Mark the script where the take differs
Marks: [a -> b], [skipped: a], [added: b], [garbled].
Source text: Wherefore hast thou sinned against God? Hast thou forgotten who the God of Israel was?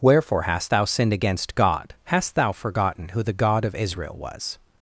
Wherefore hast thou sinned against God? Hast thou forgotten who the God of Israel was?